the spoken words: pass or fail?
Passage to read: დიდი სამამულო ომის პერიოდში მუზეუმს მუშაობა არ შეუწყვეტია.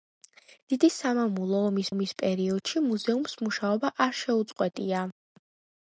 fail